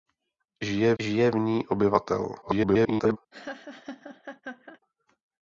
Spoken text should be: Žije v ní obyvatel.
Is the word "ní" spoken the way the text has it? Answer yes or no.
yes